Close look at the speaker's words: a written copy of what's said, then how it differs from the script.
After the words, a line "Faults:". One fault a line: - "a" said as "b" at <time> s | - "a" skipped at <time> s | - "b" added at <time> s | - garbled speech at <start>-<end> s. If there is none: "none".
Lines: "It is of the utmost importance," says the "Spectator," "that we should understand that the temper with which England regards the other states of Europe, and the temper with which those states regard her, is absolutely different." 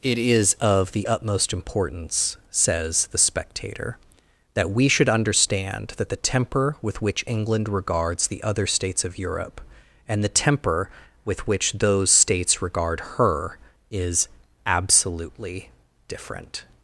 "It is of the utmost importance," says the "Spectator," "that we should understand that the temper with which England regards the other states of Europe, and the temper with which those states regard her, is absolutely different."
Faults:
none